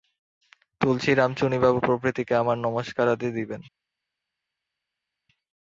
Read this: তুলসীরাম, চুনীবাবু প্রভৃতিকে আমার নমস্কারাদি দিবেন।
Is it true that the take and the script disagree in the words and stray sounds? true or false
false